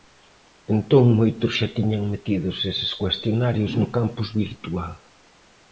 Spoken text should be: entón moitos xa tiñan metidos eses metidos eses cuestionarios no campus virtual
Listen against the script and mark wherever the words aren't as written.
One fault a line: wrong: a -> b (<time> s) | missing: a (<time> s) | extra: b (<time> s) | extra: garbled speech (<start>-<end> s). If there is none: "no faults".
missing: metidos eses (2.9 s)